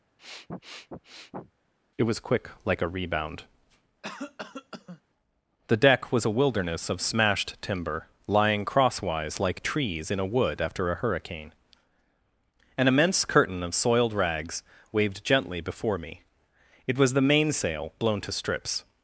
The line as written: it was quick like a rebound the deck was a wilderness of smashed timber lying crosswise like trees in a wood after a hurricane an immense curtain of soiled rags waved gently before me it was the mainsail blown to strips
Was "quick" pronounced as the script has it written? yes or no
yes